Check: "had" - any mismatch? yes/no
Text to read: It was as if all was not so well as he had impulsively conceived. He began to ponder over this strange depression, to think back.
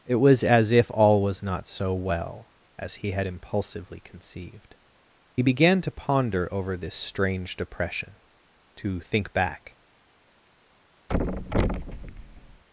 no